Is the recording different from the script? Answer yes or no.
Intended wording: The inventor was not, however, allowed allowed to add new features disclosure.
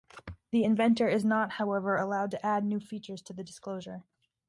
yes